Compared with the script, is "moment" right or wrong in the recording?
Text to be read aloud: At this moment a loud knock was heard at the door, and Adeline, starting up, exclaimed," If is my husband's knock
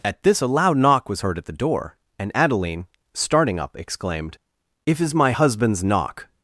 wrong